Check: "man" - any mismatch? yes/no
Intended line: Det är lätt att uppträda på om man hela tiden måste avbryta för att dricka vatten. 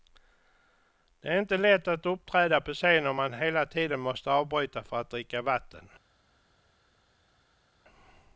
no